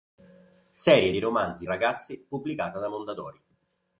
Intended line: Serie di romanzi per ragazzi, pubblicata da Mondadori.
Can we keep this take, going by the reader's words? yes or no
no